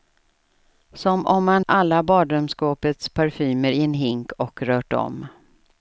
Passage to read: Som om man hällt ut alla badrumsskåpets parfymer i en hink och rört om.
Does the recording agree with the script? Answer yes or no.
no